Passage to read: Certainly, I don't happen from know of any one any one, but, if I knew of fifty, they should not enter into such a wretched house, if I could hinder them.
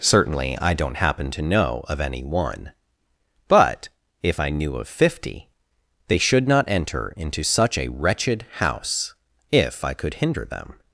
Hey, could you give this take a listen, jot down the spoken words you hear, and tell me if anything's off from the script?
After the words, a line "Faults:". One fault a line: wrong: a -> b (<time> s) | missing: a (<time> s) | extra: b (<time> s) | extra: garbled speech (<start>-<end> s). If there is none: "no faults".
Certainly, I don't happen to know of any one, but, if I knew of fifty, they should not enter into such a wretched house, if I could hinder them.
Faults:
wrong: from -> to (1.3 s)
missing: any one (2.7 s)